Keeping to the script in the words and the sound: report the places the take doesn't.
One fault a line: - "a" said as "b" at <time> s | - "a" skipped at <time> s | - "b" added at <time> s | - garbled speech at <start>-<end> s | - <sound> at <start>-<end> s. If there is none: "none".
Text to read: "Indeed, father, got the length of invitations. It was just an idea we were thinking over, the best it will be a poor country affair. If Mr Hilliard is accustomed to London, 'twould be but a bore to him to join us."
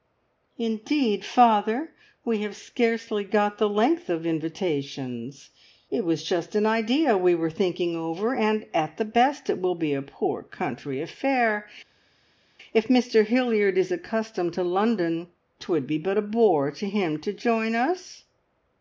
- "we have scarcely" added at 2.2 s
- "and at" added at 8.3 s